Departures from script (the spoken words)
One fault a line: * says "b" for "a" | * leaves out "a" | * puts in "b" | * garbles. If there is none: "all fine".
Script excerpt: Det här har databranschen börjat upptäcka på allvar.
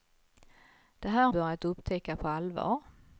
* leaves out "har databranschen"